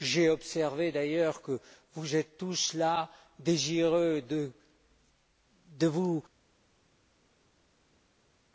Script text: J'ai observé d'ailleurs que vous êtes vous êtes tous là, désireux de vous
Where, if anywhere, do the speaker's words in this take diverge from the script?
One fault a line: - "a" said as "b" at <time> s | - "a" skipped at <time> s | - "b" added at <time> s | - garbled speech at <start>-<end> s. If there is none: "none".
- "vous êtes" skipped at 2.4 s